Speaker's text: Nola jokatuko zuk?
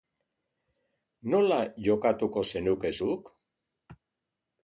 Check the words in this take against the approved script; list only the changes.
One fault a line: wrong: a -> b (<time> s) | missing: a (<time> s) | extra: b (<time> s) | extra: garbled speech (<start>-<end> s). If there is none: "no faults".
extra: zenuke (2.5 s)